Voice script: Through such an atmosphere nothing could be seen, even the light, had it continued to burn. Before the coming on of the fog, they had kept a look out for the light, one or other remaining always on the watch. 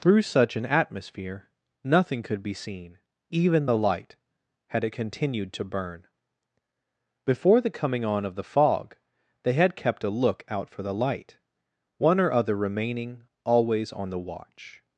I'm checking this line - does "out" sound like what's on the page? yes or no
yes